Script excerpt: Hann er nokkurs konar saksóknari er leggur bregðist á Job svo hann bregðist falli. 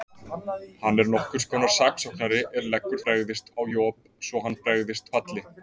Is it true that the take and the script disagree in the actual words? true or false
false